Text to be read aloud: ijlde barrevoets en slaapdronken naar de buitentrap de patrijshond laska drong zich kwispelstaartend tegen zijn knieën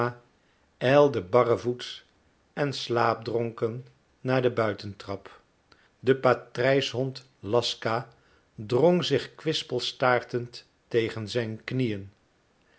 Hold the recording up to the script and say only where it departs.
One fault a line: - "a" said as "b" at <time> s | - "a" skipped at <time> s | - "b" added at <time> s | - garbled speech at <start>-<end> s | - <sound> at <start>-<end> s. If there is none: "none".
none